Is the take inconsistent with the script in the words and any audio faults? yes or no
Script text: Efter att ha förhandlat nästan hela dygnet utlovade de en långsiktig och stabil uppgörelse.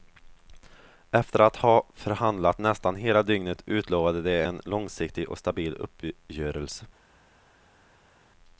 no